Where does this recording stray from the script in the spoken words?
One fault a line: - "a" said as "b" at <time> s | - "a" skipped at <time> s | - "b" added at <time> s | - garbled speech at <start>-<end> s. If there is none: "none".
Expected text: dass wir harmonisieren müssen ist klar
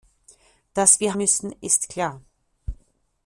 - "harmonisieren" skipped at 1.1 s